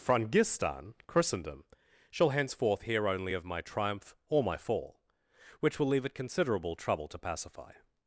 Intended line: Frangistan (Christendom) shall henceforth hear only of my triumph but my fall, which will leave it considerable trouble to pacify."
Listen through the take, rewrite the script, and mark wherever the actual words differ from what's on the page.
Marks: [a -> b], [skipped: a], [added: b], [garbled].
Frangistan (Christendom) shall henceforth hear only of my triumph [but -> or] my fall, which will leave it considerable trouble to pacify."